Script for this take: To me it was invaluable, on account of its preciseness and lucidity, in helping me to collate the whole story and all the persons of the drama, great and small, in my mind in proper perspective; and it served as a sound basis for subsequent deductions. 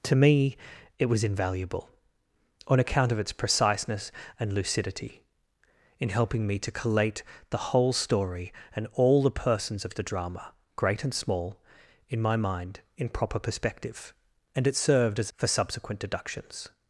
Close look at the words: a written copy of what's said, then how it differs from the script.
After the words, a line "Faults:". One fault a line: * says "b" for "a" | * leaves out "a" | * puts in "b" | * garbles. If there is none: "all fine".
To me it was invaluable, on account of its preciseness and lucidity, in helping me to collate the whole story and all the persons of the drama, great and small, in my mind in proper perspective; and it served as for subsequent deductions.
Faults:
* leaves out "a sound basis"